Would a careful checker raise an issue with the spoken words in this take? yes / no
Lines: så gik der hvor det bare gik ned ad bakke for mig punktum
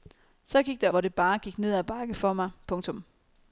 no